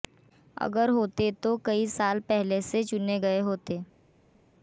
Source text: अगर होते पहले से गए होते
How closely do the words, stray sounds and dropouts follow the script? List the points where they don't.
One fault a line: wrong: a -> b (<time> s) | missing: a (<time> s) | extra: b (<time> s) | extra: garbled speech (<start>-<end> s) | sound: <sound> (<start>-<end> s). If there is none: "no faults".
extra: तो कई साल (1.4 s)
extra: चुने (2.8 s)